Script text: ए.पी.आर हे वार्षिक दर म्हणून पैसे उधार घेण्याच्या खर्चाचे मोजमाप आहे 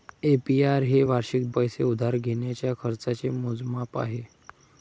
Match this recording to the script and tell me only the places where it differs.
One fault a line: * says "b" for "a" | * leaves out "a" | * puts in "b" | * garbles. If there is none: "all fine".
* leaves out "दर म्हणून"